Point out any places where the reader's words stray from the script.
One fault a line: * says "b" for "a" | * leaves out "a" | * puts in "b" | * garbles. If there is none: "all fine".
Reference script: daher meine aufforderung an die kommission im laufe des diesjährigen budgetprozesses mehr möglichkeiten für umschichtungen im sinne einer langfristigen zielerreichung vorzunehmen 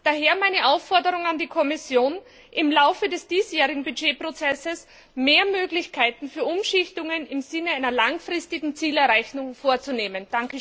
all fine